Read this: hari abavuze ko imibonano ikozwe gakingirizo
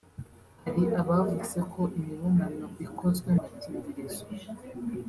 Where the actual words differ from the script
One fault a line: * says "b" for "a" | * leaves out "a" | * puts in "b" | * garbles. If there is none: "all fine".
all fine